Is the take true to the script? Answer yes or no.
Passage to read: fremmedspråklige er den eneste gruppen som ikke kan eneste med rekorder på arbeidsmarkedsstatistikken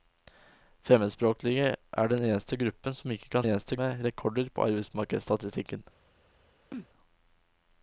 yes